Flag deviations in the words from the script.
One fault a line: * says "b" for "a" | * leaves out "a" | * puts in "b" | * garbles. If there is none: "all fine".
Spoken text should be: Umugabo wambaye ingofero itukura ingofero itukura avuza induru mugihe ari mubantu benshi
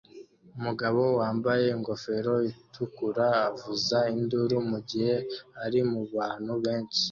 * leaves out "ingofero itukura"